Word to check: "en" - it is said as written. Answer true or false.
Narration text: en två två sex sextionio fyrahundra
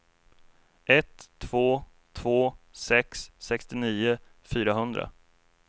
false